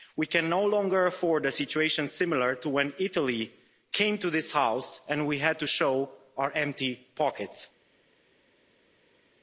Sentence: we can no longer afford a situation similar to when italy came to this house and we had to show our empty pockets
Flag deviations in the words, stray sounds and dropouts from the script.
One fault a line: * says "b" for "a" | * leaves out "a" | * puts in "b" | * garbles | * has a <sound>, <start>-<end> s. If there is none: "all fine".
all fine